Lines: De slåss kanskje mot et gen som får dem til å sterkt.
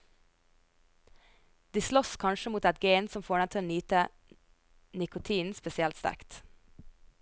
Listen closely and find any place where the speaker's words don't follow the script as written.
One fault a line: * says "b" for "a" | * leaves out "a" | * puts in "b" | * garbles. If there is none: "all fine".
* puts in "nyte nikotinen spesielt"